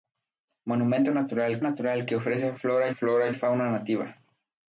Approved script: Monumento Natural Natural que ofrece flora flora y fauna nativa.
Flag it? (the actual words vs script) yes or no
no